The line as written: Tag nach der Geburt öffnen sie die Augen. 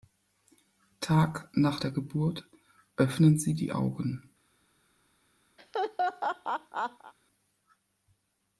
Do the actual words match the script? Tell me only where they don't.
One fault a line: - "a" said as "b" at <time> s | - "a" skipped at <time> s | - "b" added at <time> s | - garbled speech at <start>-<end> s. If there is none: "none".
none